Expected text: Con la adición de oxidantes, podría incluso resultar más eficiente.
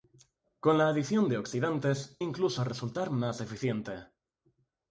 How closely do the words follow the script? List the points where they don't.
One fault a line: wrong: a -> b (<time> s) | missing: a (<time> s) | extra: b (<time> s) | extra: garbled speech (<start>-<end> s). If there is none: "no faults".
missing: podría (2.2 s)